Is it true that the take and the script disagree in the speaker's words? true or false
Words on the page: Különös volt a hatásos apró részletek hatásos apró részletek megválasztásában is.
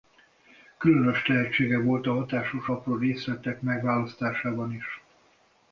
true